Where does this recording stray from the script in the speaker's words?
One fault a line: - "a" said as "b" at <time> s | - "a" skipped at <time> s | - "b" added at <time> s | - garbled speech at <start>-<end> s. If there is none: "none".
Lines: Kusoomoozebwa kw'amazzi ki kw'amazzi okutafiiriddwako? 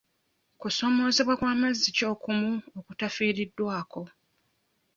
- "kw'amazzi" said as "okumu" at 2.1 s